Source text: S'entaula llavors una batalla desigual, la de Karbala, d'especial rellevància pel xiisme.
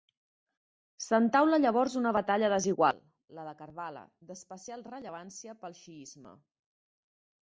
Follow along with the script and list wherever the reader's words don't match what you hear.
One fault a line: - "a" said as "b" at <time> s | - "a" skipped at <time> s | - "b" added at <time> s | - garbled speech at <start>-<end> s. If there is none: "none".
none